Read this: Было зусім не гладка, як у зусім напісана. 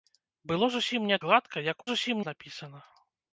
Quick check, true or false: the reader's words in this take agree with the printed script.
true